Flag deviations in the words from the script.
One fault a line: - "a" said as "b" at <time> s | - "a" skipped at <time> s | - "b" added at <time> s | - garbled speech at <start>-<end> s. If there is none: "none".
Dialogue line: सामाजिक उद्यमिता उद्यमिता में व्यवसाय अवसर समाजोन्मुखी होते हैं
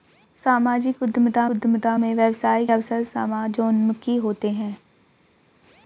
none